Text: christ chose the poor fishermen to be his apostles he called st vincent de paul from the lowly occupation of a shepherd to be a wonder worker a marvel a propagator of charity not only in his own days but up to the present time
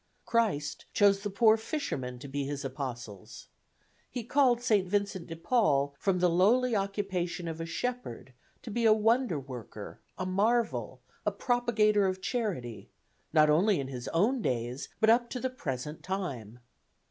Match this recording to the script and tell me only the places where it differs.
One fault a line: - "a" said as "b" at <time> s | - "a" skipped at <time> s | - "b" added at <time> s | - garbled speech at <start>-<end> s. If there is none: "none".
none